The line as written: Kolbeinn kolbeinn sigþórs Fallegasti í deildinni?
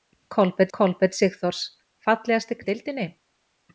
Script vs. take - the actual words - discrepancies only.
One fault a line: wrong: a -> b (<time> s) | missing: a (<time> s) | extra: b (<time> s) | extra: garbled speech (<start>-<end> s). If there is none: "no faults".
no faults